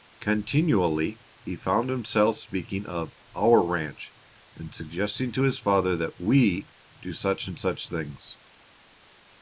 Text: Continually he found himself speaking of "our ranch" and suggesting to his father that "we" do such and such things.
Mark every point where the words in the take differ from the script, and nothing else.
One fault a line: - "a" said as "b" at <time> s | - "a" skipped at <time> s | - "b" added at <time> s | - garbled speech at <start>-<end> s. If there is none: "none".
none